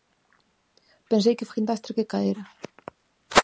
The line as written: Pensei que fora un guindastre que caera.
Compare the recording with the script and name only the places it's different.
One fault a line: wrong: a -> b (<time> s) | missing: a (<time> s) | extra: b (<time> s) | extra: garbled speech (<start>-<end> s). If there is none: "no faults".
missing: fora (1.5 s)